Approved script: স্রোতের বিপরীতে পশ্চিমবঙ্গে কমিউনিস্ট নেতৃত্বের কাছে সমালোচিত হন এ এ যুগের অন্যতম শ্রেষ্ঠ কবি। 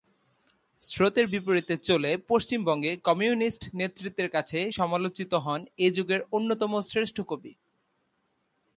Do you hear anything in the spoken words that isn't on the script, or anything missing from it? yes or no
yes